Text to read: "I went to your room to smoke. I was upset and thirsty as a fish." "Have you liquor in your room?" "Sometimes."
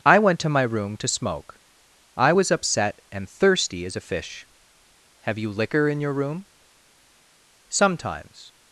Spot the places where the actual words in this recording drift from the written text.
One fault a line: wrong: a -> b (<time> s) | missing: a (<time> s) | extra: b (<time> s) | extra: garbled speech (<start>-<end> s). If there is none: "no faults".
wrong: your -> my (0.5 s)